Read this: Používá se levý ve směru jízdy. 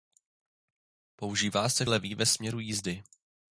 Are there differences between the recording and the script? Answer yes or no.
no